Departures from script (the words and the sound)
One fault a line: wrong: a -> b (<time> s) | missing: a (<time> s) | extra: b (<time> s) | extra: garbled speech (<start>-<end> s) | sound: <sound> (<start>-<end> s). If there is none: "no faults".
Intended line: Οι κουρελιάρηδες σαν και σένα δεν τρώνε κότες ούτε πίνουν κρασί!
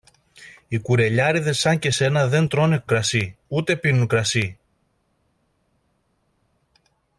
wrong: κότες -> κρασί (2.9 s)